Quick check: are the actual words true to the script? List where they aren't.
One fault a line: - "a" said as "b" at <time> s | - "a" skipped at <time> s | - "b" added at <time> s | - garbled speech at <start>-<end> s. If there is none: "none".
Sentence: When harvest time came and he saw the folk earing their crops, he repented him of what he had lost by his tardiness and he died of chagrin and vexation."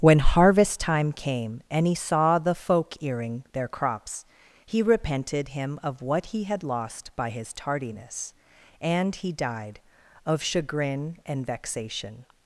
none